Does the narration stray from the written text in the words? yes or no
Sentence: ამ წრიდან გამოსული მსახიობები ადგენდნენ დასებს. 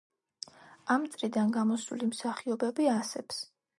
yes